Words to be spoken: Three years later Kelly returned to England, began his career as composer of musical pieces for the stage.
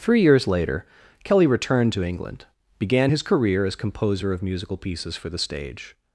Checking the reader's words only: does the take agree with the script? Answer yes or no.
yes